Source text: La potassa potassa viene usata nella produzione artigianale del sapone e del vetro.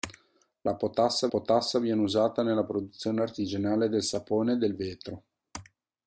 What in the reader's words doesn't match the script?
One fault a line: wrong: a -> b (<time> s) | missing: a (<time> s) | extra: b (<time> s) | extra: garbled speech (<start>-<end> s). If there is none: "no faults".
no faults